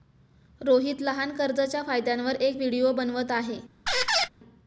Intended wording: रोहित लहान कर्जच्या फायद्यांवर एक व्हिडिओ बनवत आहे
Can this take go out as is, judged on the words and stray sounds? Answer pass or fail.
fail